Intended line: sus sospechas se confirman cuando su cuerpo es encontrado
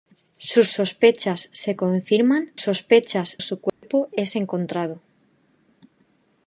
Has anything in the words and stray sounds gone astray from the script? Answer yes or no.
yes